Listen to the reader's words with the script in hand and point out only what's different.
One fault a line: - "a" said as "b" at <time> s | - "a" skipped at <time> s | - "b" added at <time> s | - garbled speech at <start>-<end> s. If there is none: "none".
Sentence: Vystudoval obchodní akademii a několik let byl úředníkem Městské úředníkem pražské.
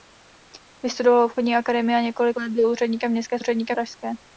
none